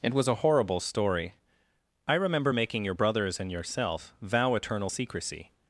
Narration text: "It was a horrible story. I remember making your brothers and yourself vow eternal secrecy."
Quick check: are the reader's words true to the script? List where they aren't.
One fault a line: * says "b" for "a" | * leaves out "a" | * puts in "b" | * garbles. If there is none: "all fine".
all fine